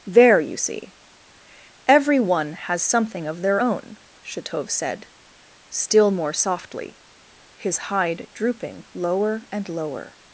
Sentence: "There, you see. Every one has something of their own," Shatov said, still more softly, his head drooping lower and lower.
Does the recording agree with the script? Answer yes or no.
no